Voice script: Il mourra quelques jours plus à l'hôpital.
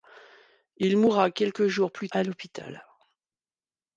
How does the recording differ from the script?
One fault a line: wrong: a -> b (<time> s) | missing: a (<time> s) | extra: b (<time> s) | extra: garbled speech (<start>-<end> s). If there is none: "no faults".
no faults